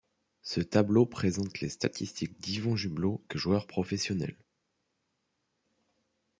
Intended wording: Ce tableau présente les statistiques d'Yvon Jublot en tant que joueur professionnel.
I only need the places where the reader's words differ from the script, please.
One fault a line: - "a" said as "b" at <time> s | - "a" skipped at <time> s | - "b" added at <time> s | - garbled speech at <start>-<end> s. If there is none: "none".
- "en tant" skipped at 3.2 s